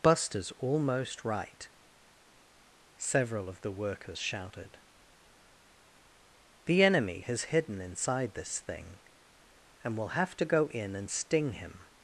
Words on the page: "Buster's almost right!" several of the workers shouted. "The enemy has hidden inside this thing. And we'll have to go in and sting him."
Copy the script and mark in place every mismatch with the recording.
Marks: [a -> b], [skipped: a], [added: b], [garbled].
"Buster's almost right!" several of the workers shouted. "The enemy has hidden inside this thing. And we'll have to go in and sting him."